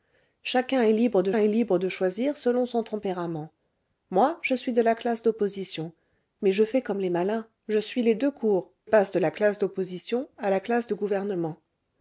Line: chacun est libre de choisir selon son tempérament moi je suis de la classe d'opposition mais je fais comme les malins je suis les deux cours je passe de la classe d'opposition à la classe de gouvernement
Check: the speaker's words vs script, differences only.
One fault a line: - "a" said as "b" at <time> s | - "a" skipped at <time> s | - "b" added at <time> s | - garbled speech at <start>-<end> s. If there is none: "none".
- "est libre de" added at 1.4 s
- "je" skipped at 8.7 s